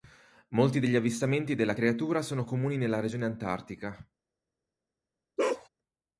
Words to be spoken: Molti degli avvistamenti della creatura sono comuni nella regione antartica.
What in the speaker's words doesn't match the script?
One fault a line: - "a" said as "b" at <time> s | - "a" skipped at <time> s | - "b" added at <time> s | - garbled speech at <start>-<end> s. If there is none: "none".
none